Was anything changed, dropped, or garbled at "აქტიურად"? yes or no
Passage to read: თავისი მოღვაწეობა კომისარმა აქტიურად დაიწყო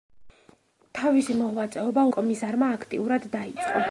no